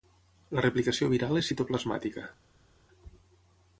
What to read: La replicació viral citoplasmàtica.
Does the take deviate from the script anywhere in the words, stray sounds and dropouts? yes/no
yes